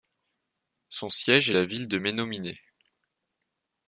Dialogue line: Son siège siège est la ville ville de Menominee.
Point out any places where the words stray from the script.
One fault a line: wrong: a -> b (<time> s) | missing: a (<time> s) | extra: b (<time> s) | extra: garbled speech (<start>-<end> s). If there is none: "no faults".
missing: siège (1.5 s)
missing: ville (1.9 s)